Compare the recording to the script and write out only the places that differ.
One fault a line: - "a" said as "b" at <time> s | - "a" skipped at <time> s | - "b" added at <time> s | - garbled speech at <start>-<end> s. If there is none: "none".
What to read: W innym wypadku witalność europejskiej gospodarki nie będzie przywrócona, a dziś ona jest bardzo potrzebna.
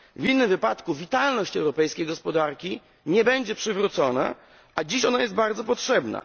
none